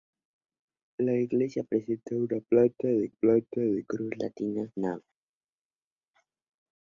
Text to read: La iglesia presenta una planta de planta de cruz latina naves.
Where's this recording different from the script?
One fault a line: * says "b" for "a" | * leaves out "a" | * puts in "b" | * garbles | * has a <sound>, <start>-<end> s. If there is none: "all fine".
all fine